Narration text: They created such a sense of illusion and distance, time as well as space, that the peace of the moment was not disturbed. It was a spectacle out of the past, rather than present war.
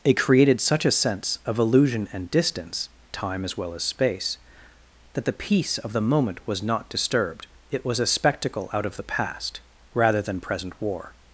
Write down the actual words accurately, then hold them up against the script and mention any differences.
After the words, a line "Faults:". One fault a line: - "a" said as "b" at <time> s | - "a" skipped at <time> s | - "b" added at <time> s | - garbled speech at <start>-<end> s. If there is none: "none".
It created such a sense of illusion and distance, time as well as space, that the peace of the moment was not disturbed. It was a spectacle out of the past, rather than present war.
Faults:
- "They" said as "It" at 0.0 s